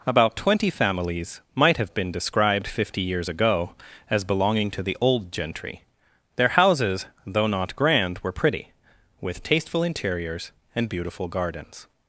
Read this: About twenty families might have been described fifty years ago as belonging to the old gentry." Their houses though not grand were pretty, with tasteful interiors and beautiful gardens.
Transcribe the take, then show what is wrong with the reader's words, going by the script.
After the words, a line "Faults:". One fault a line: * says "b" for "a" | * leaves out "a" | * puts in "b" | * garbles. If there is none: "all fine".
About twenty families might have been described fifty years ago as belonging to the old gentry." Their houses though not grand were pretty, with tasteful interiors and beautiful gardens.
Faults:
all fine